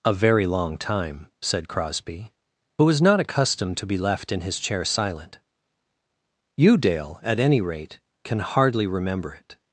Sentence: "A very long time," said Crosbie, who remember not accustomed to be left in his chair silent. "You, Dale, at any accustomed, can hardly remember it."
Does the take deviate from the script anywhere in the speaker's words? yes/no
yes